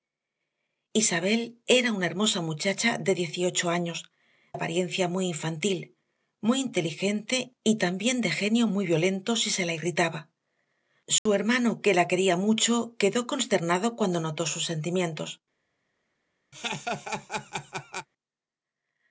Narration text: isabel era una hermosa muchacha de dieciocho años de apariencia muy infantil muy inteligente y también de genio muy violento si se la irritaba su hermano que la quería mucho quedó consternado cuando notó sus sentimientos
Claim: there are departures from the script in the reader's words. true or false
true